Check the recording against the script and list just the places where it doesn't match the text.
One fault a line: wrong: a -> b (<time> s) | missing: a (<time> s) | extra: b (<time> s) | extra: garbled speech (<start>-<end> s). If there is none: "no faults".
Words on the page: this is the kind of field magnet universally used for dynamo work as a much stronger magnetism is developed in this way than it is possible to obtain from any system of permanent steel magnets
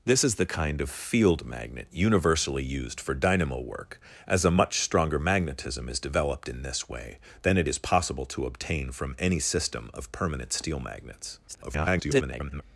extra: garbled speech (11.5-12.6 s)